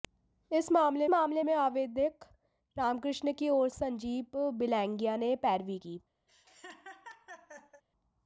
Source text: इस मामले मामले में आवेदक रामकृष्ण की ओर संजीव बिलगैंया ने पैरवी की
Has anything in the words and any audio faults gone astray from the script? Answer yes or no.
yes